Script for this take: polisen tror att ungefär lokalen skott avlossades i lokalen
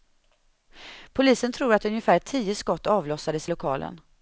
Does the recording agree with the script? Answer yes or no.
no